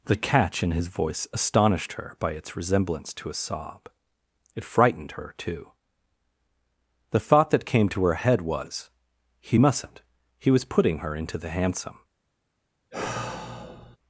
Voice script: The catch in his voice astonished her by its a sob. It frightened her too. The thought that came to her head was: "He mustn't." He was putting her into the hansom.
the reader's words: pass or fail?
fail